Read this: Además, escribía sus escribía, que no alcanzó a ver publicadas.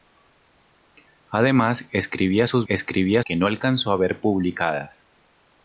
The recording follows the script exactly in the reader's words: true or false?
true